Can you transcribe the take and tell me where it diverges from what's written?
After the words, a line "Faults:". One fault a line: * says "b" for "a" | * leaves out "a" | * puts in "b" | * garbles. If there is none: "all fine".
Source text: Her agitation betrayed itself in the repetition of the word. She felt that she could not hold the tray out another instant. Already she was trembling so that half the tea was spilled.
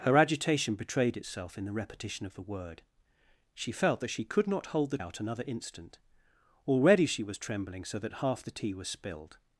Her agitation betrayed itself in the repetition of the word. She felt that she could not hold the out another instant. Already she was trembling so that half the tea was spilled.
Faults:
* leaves out "tray"